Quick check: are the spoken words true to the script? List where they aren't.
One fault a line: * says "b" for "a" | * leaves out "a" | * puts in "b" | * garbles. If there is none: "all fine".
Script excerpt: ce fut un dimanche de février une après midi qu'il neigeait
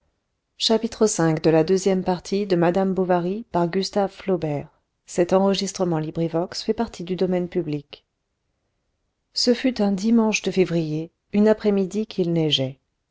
all fine